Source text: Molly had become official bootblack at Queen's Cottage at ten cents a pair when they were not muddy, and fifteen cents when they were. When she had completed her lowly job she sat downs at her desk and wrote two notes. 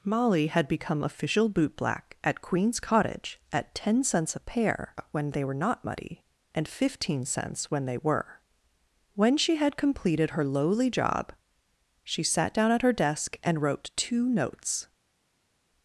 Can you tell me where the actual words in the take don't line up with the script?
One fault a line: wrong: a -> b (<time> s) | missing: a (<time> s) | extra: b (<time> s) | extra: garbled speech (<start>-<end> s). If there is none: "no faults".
wrong: downs -> down (12.5 s)